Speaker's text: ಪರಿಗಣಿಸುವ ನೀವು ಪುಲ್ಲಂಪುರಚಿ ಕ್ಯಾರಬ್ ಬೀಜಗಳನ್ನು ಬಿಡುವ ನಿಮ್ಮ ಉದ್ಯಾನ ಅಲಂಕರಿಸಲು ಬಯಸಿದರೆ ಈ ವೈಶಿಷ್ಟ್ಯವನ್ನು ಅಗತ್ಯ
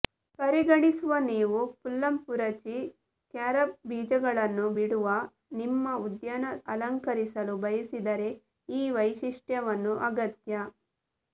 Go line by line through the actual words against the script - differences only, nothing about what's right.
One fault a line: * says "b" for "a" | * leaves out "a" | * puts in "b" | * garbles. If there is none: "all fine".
all fine